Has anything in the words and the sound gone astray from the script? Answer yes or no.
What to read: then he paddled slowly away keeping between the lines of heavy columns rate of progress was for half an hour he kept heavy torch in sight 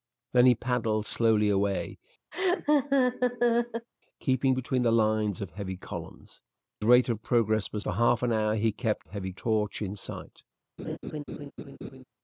yes